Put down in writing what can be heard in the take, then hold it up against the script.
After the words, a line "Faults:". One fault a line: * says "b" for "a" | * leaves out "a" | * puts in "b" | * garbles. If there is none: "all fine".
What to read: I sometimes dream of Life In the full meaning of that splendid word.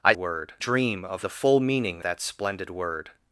I word dream of The full meaning that splendid word.
Faults:
* says "word" for "sometimes"
* leaves out "Life In"
* leaves out "of"